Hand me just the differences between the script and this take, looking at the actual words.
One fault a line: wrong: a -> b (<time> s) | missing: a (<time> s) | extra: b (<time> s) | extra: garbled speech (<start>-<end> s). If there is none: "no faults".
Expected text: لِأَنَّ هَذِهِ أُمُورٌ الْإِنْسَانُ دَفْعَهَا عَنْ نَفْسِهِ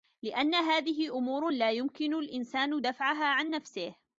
extra: لَا يُمْكِنُ (1.5 s)